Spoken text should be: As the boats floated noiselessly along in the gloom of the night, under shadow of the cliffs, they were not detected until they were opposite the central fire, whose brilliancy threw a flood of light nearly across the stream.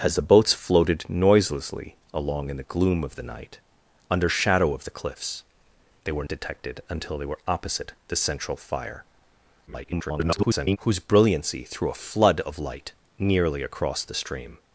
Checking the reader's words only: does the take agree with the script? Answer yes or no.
no